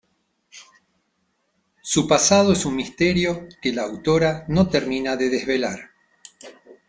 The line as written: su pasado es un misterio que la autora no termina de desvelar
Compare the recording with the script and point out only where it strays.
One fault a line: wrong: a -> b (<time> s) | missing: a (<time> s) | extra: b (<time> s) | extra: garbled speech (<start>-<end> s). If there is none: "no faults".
no faults